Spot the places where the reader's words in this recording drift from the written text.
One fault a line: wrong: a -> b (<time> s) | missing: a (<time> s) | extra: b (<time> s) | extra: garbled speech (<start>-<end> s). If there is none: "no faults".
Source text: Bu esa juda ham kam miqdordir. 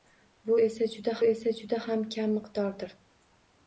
extra: esa juda (1.3 s)